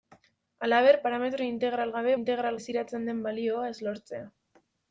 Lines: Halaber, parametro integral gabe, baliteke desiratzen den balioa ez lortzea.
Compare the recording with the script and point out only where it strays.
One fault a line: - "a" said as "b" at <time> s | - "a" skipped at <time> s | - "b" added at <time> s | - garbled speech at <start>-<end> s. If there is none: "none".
- "baliteke" said as "integral" at 2.1 s